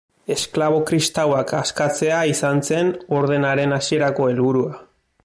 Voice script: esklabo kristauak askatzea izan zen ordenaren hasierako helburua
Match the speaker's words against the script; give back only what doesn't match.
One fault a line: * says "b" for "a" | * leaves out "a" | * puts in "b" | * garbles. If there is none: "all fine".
all fine